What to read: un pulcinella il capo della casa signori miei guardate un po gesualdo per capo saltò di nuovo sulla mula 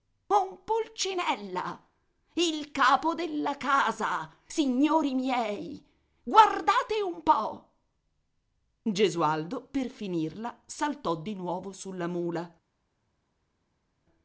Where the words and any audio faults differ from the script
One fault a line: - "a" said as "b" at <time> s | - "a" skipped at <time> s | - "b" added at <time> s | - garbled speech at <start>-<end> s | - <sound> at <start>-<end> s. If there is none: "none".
- "capo" said as "finirla" at 9.9 s